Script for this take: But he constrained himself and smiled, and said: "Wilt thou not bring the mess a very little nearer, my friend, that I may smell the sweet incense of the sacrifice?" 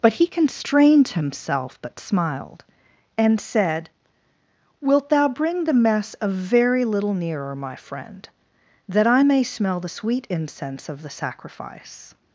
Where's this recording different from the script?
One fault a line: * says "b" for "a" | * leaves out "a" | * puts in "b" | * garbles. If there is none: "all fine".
* says "but" for "and"
* leaves out "not"